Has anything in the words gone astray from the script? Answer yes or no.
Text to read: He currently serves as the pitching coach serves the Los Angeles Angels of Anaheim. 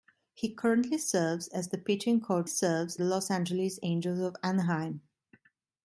no